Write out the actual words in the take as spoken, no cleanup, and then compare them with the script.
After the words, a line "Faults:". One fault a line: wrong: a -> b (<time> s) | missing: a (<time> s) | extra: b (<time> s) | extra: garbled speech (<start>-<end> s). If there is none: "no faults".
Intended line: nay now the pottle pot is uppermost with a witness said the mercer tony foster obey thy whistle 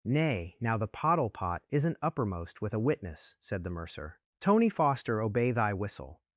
nay now the pottle pot isn't uppermost with a witness said the mercer tony foster obey thy whistle
Faults:
wrong: is -> isn't (1.7 s)